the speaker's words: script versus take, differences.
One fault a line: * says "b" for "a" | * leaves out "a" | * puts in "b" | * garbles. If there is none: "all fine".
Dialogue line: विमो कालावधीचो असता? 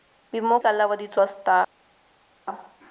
all fine